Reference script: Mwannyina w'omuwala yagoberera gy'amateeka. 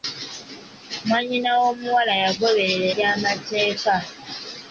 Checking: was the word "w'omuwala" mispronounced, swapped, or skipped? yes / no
no